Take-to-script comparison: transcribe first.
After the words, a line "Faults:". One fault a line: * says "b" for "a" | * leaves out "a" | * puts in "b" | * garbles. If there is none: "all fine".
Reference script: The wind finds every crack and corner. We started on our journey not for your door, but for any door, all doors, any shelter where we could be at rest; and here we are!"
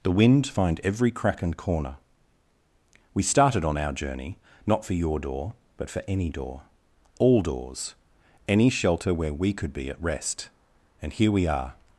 The wind find every crack and corner. We started on our journey not for your door, but for any door, all doors, any shelter where we could be at rest; and here we are!"
Faults:
* says "find" for "finds"